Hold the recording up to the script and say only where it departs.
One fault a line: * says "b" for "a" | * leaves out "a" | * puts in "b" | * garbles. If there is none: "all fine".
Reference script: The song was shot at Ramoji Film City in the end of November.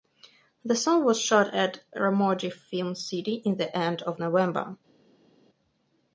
all fine